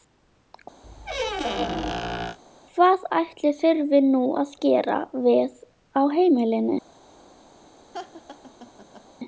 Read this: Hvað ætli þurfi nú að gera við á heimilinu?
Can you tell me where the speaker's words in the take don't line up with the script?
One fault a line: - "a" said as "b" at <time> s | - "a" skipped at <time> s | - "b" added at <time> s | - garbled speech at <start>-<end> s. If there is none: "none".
none